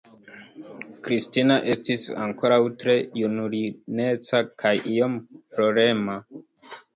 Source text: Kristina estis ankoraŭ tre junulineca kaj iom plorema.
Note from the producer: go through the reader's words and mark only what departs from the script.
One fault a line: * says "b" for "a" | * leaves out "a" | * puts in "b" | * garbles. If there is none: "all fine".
all fine